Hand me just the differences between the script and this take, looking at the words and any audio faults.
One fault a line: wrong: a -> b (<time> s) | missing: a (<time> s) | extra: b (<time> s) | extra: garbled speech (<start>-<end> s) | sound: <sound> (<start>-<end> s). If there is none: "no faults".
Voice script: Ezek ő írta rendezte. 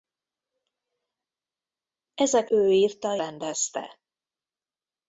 no faults